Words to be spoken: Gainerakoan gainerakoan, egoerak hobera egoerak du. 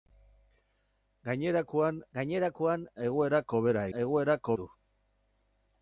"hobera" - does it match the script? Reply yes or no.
yes